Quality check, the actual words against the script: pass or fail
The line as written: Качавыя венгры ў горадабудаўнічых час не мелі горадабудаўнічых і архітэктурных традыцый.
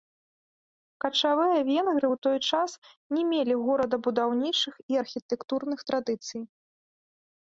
fail